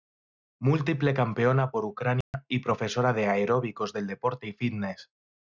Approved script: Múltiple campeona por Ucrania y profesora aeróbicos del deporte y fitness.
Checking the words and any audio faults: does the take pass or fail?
fail